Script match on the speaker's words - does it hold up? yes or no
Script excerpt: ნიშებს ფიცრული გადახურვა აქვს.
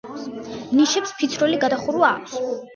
yes